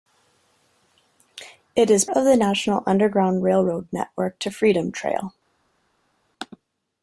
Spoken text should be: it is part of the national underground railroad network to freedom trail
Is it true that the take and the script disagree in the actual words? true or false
true